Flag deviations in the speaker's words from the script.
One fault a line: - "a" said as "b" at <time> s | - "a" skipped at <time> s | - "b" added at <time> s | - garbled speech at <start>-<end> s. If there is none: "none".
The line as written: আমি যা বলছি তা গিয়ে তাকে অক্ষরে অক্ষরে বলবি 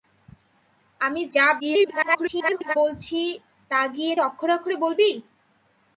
- garbled speech at 1.6-2.8 s
- "তাকে" skipped at 4.1 s